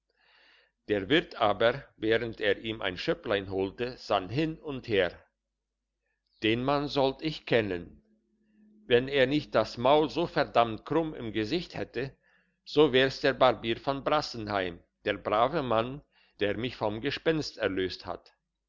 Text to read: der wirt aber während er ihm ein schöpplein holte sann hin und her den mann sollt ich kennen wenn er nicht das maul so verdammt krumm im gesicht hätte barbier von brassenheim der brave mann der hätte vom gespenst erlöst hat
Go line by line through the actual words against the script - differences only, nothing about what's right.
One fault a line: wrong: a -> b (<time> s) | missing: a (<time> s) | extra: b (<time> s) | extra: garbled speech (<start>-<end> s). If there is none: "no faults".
extra: so wär's der (12.7 s)
wrong: hätte -> mich (16.6 s)